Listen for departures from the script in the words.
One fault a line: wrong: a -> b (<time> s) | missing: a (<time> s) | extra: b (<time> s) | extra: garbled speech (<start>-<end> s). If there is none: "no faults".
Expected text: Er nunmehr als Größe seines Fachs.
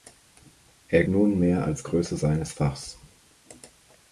no faults